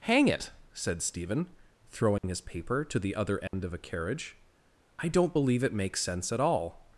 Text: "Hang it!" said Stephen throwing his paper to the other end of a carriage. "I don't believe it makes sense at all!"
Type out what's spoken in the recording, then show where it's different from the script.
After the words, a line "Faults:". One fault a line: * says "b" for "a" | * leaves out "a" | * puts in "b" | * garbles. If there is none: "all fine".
"Hang it!" said Stephen throwing his paper to the other end of a carriage. "I don't believe it makes sense at all!"
Faults:
all fine